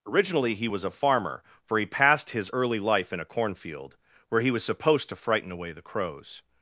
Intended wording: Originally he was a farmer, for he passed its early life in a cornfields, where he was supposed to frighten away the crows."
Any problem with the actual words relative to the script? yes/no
yes